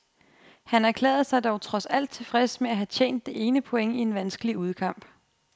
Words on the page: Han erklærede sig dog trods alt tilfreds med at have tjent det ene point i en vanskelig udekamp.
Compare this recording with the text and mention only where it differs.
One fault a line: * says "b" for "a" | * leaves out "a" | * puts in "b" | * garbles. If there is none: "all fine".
all fine